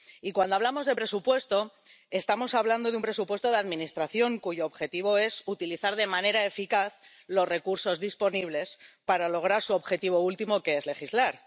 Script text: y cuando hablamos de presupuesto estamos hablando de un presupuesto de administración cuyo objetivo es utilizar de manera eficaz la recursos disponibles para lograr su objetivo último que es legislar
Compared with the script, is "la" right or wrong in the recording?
wrong